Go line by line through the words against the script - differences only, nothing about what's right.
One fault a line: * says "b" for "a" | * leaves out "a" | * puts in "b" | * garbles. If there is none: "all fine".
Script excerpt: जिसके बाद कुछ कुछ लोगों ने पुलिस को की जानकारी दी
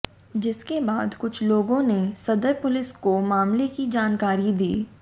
* leaves out "कुछ"
* puts in "सदर"
* puts in "मामले"